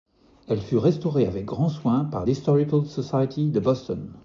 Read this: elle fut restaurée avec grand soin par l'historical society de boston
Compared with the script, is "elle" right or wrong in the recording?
right